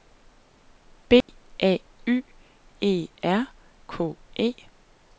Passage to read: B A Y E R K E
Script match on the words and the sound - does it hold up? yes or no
no